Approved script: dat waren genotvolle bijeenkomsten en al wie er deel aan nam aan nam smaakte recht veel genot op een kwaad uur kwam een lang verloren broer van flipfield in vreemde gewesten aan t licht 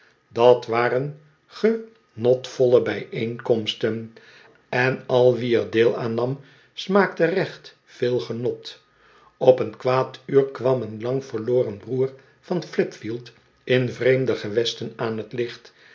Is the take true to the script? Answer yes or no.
no